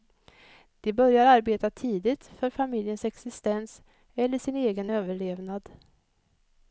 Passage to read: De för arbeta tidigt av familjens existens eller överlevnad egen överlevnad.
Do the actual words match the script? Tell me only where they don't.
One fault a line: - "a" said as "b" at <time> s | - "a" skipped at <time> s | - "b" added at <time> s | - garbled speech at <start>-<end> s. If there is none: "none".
- "för" said as "börjar" at 0.9 s
- "av" said as "för" at 2.2 s
- "överlevnad" said as "sin" at 4.4 s